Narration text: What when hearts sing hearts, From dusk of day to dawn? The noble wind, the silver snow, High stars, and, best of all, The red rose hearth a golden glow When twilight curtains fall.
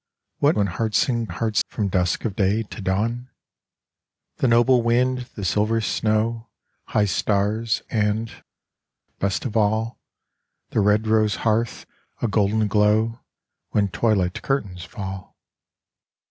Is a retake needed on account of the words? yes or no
no